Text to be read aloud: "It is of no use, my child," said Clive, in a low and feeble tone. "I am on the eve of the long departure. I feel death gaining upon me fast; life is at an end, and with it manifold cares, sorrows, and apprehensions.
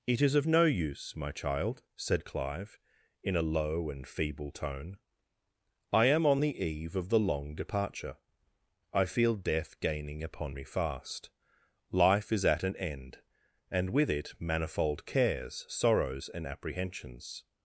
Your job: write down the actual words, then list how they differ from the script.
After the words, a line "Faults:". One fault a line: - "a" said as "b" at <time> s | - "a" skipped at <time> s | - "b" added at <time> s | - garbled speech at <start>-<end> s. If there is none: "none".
"It is of no use, my child," said Clive, in a low and feeble tone. "I am on the eve of the long departure. I feel death gaining upon me fast; life is at an end, and with it manifold cares, sorrows, and apprehensions.
Faults:
none